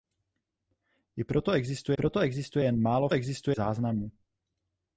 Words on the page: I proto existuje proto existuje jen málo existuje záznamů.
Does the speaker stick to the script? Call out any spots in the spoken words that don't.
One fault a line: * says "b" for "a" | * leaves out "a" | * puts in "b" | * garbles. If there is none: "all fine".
all fine